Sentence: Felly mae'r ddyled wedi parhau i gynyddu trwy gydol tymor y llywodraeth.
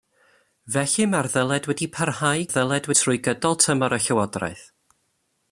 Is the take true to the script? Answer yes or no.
no